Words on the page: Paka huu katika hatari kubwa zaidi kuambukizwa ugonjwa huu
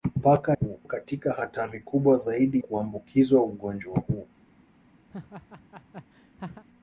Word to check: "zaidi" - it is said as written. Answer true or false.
true